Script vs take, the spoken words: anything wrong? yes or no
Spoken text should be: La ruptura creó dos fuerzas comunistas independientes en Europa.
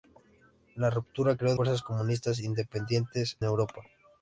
yes